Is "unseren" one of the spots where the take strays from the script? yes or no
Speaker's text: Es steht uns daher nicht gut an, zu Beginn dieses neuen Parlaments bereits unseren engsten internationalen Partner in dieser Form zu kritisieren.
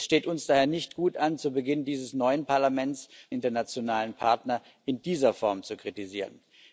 yes